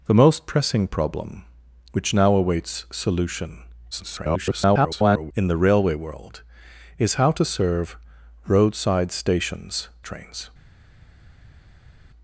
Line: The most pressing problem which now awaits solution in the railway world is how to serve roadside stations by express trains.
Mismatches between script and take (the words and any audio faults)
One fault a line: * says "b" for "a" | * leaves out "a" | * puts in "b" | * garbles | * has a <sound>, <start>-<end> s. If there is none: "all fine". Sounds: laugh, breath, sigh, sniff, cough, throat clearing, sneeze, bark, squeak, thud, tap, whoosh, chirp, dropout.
* garbles
* leaves out "by express"